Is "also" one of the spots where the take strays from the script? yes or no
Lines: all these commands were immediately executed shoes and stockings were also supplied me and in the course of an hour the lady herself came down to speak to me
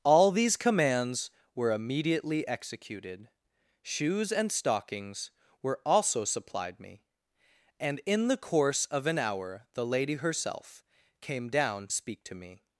no